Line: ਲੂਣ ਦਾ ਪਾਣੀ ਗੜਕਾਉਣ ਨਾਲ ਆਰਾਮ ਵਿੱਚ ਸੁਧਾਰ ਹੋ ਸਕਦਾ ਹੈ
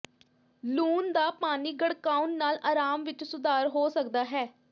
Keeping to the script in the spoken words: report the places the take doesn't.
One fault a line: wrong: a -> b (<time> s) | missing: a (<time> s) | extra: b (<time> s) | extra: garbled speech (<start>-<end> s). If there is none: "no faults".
no faults